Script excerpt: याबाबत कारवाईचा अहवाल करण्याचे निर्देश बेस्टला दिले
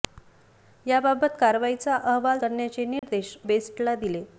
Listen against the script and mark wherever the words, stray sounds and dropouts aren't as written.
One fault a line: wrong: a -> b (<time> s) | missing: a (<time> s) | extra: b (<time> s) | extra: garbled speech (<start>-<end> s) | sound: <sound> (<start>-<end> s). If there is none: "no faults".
sound: dropout (3.0-3.0 s)